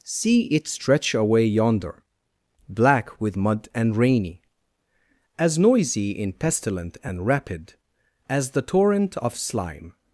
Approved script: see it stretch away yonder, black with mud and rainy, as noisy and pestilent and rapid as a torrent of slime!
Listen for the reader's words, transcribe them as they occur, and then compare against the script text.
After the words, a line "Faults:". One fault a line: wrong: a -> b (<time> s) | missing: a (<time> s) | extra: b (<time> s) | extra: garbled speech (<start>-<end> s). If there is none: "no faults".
see it stretch away yonder, black with mud and rainy, as noisy in pestilent and rapid as the torrent of slime!
Faults:
wrong: and -> in (6.1 s)
wrong: a -> the (8.5 s)